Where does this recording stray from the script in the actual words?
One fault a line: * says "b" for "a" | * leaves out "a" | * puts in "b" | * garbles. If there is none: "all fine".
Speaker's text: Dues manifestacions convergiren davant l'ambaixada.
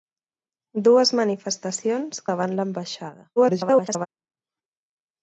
* leaves out "convergiren"
* garbles